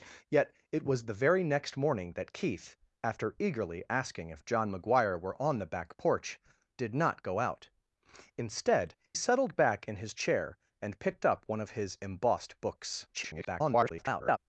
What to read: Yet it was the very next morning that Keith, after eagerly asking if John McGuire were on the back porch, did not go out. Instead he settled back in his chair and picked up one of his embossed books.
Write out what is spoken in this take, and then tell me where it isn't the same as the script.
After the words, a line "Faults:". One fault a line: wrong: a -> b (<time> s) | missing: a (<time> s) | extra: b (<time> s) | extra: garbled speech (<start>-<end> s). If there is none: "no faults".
Yet it was the very next morning that Keith, after eagerly asking if John McGuire were on the back porch, did not go out. Instead settled back in his chair and picked up one of his embossed books. [garbled]
Faults:
missing: he (8.9 s)
extra: garbled speech (13.1-14.4 s)